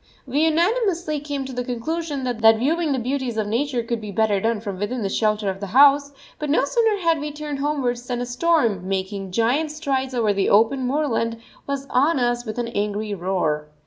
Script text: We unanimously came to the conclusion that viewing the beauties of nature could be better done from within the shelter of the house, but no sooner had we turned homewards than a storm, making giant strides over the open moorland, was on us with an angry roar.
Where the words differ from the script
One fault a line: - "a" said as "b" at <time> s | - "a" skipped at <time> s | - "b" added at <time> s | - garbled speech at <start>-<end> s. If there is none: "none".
none